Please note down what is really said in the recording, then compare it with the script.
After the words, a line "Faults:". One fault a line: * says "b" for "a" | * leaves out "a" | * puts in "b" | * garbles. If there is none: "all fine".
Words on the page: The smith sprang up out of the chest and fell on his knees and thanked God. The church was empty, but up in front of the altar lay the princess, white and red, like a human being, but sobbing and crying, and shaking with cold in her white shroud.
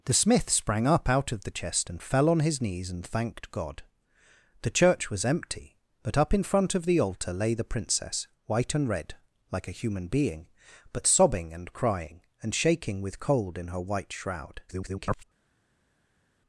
The smith sprang up out of the chest and fell on his knees and thanked God. The church was empty, but up in front of the altar lay the princess, white and red, like a human being, but sobbing and crying, and shaking with cold in her white shroud. [garbled]
Faults:
* garbles